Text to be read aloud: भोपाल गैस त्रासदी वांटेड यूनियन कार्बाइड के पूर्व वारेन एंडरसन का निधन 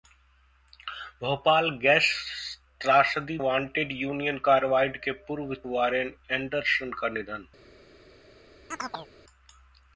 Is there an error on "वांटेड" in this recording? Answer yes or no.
no